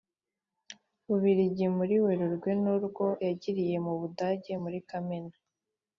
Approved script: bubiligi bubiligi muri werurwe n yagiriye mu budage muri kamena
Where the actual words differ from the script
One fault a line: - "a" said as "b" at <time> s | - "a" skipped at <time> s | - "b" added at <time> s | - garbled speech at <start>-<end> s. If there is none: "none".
- "bubiligi" skipped at 1.6 s
- "urwo" added at 2.8 s